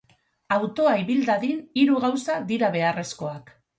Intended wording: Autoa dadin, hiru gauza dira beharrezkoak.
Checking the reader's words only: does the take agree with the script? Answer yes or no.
no